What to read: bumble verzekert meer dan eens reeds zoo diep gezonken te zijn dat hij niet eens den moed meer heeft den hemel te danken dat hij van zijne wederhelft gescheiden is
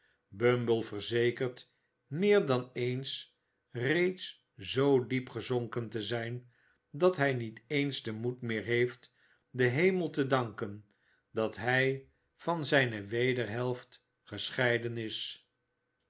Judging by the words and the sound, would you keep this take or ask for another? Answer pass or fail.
pass